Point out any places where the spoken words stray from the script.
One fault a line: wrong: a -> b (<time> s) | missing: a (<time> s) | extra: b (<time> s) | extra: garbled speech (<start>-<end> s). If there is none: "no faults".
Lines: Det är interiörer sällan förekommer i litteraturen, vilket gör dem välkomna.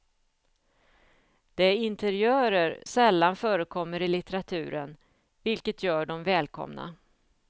no faults